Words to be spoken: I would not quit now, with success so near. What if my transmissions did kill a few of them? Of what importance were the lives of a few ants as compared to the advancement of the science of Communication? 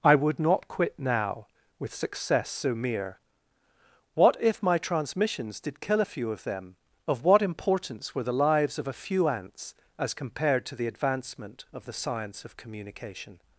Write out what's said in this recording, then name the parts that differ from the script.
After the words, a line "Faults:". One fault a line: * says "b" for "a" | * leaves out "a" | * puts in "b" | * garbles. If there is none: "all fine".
I would not quit now, with success so mere. What if my transmissions did kill a few of them? Of what importance were the lives of a few ants as compared to the advancement of the science of Communication?
Faults:
* says "mere" for "near"